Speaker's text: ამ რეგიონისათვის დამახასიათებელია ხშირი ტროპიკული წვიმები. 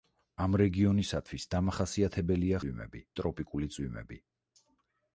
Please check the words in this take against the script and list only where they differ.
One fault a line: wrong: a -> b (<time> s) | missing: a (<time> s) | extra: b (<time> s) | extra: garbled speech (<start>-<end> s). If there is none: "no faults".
wrong: ხშირი -> წვიმები (2.6 s)